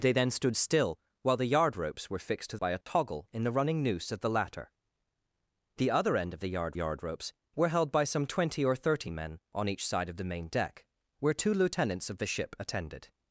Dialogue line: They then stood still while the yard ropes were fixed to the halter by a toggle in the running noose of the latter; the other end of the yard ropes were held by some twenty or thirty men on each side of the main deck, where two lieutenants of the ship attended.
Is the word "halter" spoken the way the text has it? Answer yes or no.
no